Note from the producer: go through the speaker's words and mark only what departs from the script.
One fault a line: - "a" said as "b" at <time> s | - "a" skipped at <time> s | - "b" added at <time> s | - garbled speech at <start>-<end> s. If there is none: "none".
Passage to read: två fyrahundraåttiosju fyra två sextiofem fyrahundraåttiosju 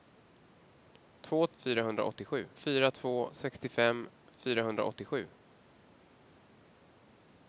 none